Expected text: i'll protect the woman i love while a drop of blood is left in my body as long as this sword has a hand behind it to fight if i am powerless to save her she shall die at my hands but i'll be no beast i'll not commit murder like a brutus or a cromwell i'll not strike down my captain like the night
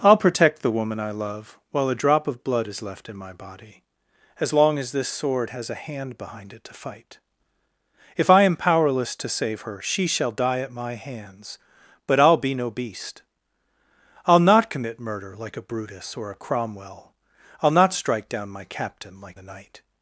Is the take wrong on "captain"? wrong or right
right